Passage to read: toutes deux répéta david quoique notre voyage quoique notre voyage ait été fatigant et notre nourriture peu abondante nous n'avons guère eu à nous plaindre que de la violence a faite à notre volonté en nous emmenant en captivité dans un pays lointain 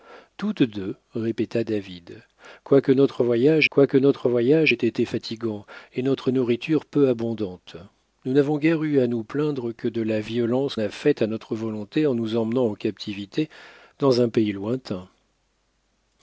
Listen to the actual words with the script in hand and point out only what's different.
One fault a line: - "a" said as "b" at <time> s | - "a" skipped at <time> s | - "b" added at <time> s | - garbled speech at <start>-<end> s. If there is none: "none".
none